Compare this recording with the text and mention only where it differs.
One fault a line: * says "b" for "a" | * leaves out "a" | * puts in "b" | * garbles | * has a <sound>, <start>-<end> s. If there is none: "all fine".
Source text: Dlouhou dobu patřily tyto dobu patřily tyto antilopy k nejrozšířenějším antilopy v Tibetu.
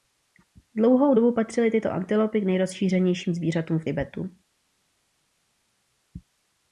* leaves out "dobu patřily tyto"
* says "zvířatům" for "antilopy"